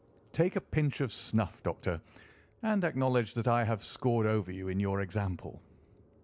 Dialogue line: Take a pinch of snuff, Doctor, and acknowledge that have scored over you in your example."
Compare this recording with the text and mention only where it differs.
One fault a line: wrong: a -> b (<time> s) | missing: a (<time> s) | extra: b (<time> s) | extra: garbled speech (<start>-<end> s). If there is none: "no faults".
extra: I (3.5 s)